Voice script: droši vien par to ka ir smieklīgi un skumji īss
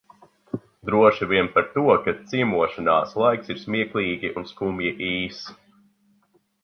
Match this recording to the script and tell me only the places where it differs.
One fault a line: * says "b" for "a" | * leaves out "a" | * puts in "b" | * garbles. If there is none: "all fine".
* puts in "ciemošanās laiks"